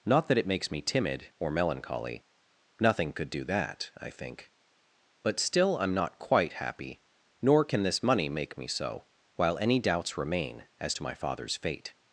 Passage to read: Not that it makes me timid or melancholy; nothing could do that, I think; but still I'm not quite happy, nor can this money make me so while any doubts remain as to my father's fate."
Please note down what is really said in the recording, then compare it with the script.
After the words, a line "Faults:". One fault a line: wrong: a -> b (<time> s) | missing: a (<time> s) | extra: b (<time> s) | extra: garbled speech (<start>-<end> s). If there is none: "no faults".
Not that it makes me timid or melancholy; nothing could do that, I think; but still I'm not quite happy, nor can this money make me so while any doubts remain as to my father's fate."
Faults:
no faults